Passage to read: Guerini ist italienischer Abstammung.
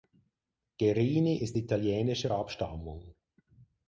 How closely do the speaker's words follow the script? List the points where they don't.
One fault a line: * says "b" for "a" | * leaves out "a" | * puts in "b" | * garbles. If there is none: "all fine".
all fine